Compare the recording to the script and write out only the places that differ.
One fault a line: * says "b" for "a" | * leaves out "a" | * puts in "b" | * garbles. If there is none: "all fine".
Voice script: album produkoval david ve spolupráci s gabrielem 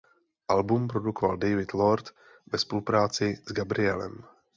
* puts in "lord"